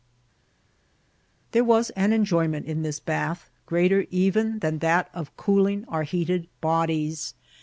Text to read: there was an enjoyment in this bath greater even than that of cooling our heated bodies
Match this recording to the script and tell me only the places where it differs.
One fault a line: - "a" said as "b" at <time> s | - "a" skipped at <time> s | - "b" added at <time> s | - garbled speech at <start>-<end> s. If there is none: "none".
none